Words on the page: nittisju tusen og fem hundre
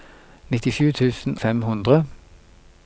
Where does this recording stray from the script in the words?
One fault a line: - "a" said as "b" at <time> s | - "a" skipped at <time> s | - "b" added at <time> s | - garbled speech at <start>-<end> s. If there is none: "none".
- "og" skipped at 1.4 s